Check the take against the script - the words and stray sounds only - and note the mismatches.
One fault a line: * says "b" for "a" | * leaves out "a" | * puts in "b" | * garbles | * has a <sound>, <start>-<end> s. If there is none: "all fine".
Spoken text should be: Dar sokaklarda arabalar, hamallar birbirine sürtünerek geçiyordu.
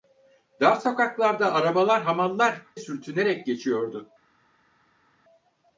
* leaves out "birbirine"